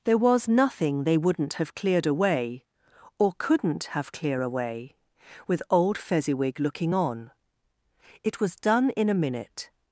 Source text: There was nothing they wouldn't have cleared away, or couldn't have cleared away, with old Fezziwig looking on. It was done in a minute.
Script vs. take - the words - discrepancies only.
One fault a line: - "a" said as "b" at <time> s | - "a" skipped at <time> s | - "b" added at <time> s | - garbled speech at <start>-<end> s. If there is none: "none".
- "cleared" said as "clear" at 4.1 s